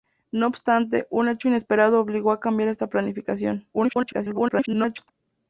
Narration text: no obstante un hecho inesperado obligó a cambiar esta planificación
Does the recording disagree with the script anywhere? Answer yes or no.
yes